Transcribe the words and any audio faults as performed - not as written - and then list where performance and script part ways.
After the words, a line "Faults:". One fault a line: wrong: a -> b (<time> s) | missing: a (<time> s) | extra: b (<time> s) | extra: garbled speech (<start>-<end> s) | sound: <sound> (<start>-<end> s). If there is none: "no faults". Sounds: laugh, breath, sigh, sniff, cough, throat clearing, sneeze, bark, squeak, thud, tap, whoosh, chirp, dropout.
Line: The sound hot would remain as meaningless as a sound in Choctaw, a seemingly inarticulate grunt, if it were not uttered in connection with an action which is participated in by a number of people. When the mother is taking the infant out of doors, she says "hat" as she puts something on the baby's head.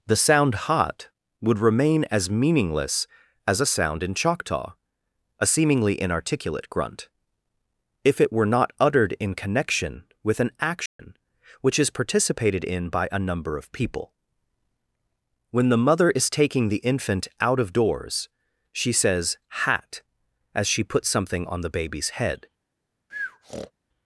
The sound hot would remain as meaningless as a sound in Choctaw, a seemingly inarticulate grunt, if it were not uttered in connection with an action which is participated in by a number of people. When the mother is taking the infant out of doors, she says "hat" as she puts something on the baby's head.
Faults:
sound: dropout (10.9-11.0 s)
sound: breath (23.1-23.7 s)